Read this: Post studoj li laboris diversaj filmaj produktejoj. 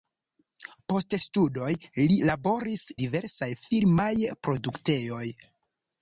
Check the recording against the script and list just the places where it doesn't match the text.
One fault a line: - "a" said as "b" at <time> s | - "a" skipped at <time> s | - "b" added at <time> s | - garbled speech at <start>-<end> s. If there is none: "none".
none